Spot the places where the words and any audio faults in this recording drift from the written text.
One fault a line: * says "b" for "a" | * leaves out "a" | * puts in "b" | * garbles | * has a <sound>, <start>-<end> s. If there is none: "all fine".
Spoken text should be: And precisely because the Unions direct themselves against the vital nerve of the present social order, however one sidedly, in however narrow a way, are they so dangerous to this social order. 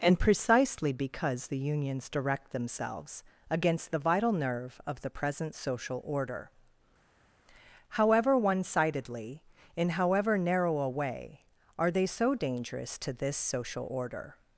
all fine